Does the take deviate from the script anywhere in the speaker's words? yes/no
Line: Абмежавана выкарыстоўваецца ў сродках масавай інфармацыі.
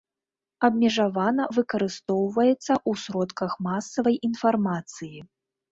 no